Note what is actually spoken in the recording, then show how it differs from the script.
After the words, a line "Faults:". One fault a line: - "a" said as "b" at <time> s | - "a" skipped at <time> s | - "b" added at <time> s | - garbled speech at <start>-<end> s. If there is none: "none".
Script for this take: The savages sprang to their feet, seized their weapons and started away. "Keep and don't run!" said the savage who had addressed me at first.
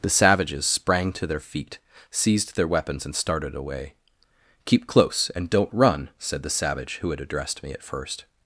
The savages sprang to their feet, seized their weapons and started away. "Keep close, and don't run!" said the savage who had addressed me at first.
Faults:
- "close" added at 4.9 s